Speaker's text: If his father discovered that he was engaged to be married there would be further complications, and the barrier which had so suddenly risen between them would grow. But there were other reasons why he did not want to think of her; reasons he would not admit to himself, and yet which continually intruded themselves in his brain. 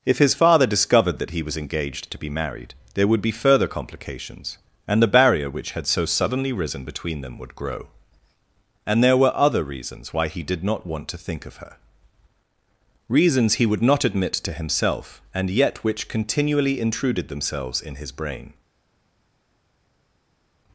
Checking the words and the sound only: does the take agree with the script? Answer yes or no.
no